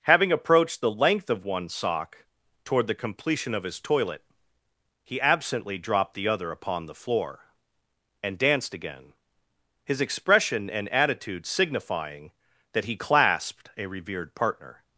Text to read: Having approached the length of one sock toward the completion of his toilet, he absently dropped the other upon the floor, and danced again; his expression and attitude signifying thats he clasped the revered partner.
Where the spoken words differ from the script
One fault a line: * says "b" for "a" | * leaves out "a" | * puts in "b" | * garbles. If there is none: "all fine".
* says "that" for "thats"
* says "a" for "the"